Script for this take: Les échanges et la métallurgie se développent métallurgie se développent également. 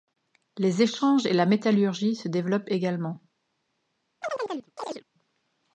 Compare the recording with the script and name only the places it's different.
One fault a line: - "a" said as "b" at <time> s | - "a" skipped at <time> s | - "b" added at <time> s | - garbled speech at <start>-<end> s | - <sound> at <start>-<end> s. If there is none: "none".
- "métallurgie se développent" skipped at 2.7 s
- chirp at 4.2-5.0 s